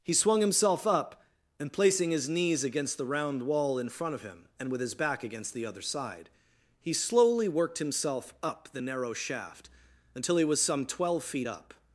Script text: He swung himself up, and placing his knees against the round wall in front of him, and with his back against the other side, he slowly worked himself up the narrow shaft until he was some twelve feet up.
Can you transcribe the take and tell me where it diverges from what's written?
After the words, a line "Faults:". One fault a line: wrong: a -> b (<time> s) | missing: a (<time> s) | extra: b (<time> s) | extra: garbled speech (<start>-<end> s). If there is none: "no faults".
He swung himself up, and placing his knees against the round wall in front of him, and with his back against the other side, he slowly worked himself up the narrow shaft until he was some twelve feet up.
Faults:
no faults